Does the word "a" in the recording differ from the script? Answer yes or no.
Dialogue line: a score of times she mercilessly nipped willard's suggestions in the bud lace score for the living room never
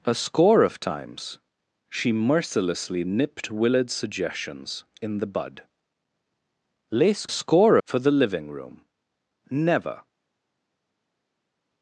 no